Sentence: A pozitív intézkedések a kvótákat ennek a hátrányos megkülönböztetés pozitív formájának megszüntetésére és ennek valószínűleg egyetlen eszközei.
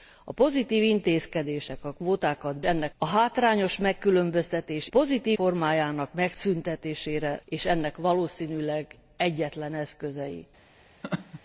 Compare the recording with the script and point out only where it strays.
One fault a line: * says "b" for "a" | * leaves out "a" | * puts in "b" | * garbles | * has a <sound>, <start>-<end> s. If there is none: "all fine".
* has a laugh, 11.0-11.4 s